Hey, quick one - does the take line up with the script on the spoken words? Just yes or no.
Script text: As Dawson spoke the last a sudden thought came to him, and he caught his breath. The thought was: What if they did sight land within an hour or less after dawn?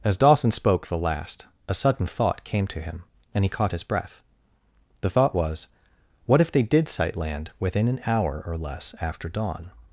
yes